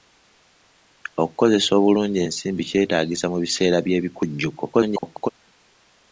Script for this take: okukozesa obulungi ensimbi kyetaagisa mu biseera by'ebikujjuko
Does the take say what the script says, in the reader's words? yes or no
no